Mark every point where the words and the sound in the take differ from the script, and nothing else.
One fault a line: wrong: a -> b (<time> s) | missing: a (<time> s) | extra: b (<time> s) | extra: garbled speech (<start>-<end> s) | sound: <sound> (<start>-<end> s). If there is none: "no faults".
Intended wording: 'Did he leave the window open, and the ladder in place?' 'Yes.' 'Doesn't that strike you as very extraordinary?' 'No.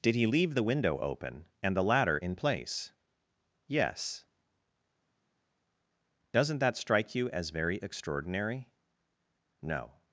no faults